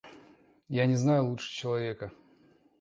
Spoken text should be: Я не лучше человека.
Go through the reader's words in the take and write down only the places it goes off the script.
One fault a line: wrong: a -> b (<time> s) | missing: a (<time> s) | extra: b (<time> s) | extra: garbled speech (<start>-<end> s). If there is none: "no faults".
extra: знаю (0.9 s)